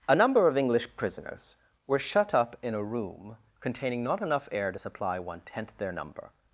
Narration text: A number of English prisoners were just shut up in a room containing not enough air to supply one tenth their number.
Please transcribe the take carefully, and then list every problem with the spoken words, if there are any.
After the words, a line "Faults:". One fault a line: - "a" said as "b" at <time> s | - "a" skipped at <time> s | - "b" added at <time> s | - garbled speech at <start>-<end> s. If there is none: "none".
A number of English prisoners were shut up in a room containing not enough air to supply one tenth their number.
Faults:
- "just" skipped at 2.0 s